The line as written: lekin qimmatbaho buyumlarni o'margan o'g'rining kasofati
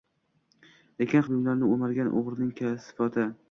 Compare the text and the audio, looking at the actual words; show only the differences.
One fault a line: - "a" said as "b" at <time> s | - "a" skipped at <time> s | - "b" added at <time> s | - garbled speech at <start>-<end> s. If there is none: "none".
- "qimmatbaho" skipped at 1.2 s